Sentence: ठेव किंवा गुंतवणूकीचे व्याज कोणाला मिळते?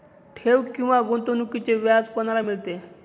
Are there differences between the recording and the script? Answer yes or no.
no